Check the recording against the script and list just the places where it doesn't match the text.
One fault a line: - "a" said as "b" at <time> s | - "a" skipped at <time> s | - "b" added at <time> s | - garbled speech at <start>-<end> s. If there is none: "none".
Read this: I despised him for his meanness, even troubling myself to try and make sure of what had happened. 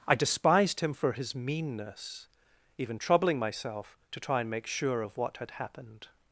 none